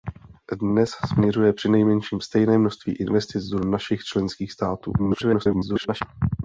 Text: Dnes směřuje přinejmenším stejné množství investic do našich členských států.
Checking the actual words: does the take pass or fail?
fail